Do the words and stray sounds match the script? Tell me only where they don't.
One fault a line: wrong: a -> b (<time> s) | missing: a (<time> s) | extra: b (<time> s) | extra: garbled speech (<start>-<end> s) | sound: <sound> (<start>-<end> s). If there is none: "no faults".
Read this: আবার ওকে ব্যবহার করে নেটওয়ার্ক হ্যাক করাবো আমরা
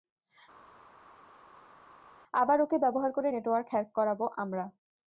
no faults